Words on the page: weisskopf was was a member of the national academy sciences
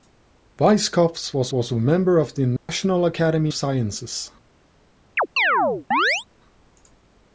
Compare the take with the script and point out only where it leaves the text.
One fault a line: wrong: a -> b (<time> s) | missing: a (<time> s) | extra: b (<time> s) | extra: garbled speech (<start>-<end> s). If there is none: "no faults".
no faults